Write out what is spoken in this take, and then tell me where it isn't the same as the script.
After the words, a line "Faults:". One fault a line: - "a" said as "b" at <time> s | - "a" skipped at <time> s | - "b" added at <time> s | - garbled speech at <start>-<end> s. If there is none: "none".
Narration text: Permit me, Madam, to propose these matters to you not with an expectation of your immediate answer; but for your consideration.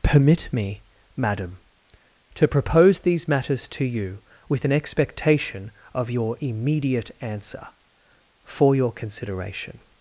Permit me, Madam, to propose these matters to you with an expectation of your immediate answer; for your consideration.
Faults:
- "not" skipped at 4.2 s
- "but" skipped at 7.7 s